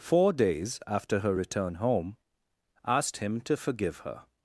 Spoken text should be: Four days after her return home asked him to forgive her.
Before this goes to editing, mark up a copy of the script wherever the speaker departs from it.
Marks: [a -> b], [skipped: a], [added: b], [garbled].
Four days after her return home asked him to forgive her.